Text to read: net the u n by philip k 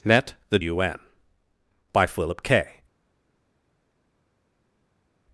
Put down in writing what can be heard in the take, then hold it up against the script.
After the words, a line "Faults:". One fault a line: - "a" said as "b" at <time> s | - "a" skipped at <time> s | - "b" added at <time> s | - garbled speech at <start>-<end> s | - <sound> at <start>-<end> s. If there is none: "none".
net the u n by philip k
Faults:
none